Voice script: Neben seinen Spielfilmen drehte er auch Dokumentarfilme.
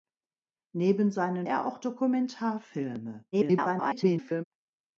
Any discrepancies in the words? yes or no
yes